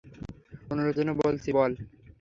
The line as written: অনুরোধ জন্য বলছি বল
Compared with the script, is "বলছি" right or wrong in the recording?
right